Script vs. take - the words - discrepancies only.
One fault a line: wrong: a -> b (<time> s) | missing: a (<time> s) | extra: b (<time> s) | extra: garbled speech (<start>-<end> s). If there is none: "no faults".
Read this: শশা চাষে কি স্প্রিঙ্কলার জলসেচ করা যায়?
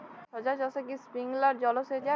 missing: করা (2.0 s)